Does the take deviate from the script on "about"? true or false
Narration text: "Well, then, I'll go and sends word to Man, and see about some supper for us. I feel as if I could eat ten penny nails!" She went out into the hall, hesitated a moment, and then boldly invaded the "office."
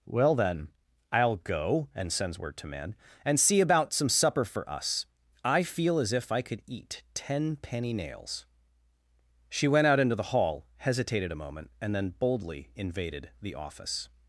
false